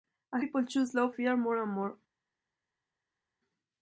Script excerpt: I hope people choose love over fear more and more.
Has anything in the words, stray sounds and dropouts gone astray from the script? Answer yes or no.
yes